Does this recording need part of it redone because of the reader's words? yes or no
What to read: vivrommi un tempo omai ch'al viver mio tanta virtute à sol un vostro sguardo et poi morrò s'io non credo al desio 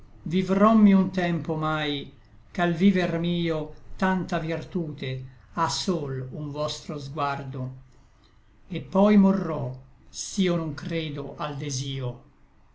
no